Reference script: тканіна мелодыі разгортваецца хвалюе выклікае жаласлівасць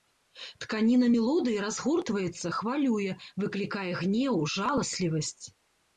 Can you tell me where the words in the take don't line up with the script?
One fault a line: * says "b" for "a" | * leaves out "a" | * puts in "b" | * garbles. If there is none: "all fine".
* puts in "гнеў"